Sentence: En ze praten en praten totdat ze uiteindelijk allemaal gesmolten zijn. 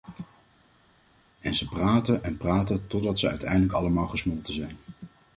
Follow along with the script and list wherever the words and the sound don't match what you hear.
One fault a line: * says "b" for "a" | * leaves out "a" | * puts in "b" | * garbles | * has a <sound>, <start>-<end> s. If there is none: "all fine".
all fine